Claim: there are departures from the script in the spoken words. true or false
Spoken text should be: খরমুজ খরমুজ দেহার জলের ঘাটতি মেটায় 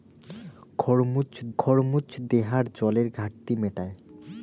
false